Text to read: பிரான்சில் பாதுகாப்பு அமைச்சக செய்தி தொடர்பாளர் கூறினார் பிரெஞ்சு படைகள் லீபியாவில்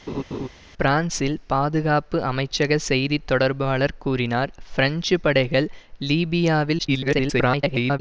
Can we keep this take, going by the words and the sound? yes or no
no